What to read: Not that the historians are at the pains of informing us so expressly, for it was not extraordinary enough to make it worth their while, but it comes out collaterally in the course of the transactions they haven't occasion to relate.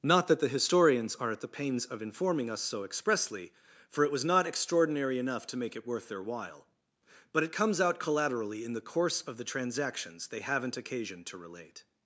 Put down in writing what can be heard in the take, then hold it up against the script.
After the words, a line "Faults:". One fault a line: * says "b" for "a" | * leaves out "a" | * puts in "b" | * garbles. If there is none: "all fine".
Not that the historians are at the pains of informing us so expressly, for it was not extraordinary enough to make it worth their while, but it comes out collaterally in the course of the transactions they haven't occasion to relate.
Faults:
all fine